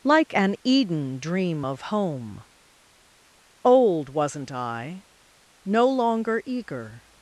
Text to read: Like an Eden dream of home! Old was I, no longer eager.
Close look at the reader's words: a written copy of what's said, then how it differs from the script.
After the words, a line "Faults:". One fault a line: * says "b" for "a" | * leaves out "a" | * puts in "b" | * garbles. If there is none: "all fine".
Like an Eden dream of home! Old wasn't I, no longer eager.
Faults:
* says "wasn't" for "was"